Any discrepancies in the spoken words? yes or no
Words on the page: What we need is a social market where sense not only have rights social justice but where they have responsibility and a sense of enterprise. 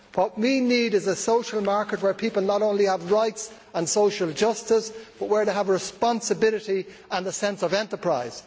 yes